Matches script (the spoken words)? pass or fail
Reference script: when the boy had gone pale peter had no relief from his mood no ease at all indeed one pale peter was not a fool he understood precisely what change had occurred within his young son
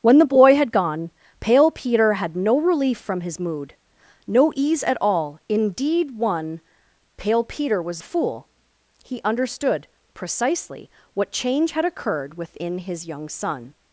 fail